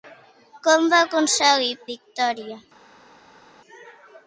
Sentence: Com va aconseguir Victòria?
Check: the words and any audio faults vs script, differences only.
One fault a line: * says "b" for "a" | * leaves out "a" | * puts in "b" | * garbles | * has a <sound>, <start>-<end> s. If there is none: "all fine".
all fine